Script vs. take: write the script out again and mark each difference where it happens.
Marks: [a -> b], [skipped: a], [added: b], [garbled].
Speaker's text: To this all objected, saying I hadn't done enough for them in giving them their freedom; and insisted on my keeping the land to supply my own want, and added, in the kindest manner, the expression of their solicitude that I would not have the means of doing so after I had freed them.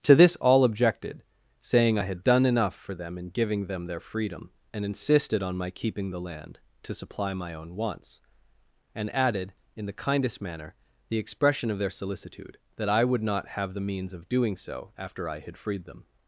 To this all objected, saying I [hadn't -> had] done enough for them in giving them their freedom; and insisted on my keeping the land to supply my own [want, -> wants] and added, in the kindest manner, the expression of their solicitude that I would not have the means of doing so after I had freed them.